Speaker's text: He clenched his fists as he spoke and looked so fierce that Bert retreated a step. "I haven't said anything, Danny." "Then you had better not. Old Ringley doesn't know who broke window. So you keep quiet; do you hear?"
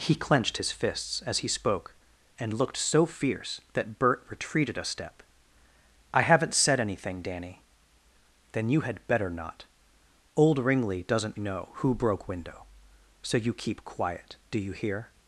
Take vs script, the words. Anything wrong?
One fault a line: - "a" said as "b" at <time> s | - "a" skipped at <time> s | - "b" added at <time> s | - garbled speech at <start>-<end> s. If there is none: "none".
none